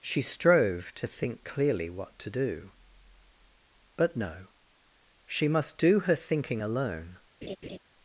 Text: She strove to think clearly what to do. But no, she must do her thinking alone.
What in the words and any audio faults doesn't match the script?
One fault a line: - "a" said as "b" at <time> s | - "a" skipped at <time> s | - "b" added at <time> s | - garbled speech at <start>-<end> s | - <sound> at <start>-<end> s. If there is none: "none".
- laugh at 7.4-7.8 s